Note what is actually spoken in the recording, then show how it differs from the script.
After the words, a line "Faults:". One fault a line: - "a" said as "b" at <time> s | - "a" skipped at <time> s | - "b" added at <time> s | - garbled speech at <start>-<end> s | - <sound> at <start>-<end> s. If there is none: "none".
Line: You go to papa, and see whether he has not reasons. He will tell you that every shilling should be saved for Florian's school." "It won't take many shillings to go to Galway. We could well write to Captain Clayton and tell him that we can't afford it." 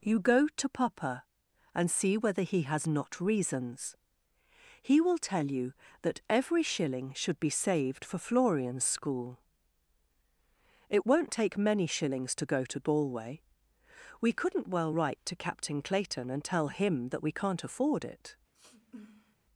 You go to papa, and see whether he has not reasons. He will tell you that every shilling should be saved for Florian's school." "It won't take many shillings to go to Galway. We couldn't well write to Captain Clayton and tell him that we can't afford it."
Faults:
- "could" said as "couldn't" at 14.3 s
- sniff at 18.5-19.4 s